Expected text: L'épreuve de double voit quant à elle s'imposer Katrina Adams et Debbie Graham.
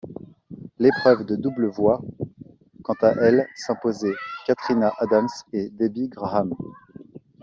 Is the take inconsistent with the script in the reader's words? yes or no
no